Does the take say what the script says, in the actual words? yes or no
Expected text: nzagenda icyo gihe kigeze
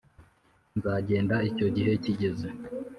yes